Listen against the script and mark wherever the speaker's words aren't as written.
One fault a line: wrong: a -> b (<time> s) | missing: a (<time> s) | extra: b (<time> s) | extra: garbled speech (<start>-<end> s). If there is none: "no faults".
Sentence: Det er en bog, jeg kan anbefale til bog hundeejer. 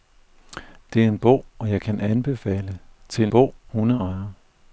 no faults